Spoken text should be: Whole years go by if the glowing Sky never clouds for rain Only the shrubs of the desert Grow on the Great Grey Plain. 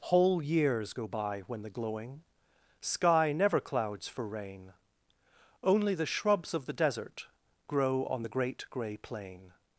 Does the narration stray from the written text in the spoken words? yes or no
yes